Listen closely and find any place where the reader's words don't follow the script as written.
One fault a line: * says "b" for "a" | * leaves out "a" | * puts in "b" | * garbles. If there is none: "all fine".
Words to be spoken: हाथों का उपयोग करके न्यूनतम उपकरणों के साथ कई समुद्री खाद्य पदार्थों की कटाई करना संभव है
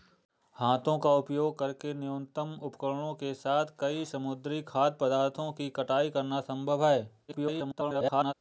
* garbles